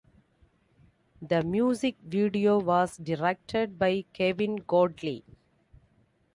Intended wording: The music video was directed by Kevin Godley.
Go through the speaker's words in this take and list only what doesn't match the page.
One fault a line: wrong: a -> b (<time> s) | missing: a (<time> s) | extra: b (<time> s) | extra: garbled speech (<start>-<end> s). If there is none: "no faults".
no faults